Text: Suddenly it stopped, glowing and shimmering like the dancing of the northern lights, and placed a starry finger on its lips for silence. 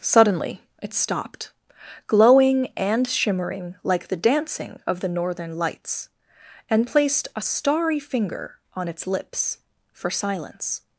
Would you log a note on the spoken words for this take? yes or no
no